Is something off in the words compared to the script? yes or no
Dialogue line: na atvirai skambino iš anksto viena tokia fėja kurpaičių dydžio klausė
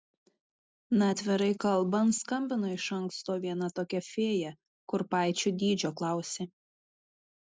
yes